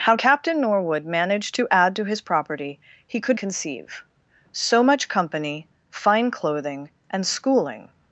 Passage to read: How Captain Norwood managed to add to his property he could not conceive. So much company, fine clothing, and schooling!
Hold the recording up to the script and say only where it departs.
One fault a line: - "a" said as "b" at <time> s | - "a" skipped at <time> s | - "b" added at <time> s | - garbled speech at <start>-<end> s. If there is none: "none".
- "not" skipped at 3.4 s